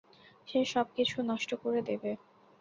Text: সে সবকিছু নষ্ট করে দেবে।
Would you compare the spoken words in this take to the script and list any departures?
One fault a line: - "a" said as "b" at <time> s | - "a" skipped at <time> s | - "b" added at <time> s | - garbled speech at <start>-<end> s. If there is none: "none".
none